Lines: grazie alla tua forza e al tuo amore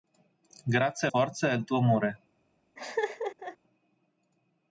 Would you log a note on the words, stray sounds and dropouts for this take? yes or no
yes